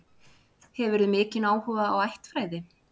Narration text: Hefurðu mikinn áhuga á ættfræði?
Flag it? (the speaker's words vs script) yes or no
no